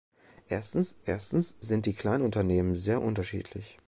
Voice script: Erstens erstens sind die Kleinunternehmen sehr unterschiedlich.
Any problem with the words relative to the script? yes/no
no